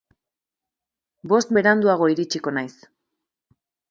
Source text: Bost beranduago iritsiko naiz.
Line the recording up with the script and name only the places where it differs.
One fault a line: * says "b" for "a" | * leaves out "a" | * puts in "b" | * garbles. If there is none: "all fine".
all fine